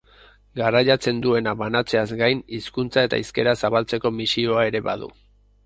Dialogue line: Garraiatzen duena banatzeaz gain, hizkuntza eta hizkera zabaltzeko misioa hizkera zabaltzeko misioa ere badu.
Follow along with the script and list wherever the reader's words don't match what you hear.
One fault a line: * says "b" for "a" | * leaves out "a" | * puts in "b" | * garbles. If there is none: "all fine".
* leaves out "hizkera zabaltzeko misioa"